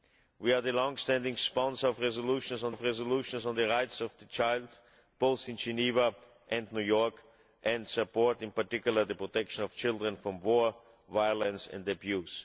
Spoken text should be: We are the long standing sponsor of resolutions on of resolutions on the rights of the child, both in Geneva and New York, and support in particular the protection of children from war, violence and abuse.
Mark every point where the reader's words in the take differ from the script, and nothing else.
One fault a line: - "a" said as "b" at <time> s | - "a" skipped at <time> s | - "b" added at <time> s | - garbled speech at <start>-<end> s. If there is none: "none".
none